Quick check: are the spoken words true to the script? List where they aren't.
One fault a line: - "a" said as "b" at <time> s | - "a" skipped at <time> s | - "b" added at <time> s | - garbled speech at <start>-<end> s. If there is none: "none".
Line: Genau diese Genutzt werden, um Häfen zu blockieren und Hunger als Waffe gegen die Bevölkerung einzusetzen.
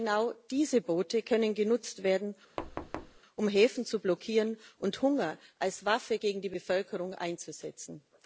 - "Boote können" added at 0.8 s